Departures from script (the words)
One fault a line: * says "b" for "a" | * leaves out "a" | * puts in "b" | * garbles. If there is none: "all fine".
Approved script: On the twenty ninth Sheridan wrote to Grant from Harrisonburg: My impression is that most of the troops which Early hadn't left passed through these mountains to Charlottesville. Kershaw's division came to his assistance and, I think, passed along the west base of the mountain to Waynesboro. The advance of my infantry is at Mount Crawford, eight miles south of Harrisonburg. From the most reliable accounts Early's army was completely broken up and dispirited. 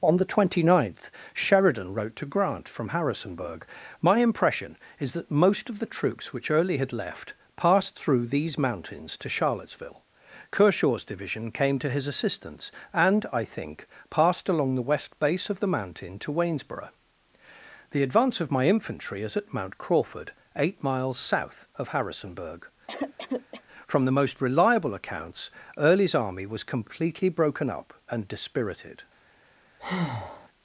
* says "had" for "hadn't"